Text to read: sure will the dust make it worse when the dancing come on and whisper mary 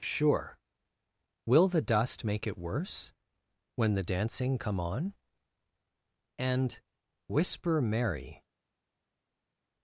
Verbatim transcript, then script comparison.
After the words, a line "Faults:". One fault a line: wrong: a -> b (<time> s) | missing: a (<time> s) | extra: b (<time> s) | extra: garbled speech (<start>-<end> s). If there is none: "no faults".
sure will the dust make it worse when the dancing come on and whisper mary
Faults:
no faults